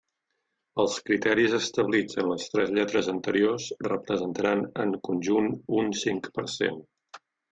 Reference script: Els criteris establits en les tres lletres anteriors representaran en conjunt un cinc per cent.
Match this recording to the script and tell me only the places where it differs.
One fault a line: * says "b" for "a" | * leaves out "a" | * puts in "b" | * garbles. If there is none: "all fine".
all fine